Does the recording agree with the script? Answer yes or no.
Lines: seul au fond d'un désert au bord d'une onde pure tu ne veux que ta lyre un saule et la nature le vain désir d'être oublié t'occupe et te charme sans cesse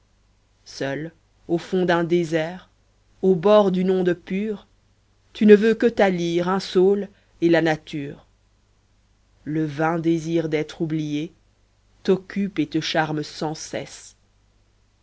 yes